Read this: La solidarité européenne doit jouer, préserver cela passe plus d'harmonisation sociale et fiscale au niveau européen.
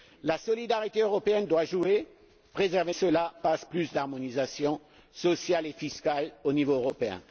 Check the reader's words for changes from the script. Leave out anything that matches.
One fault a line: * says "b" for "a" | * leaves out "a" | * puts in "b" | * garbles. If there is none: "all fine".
all fine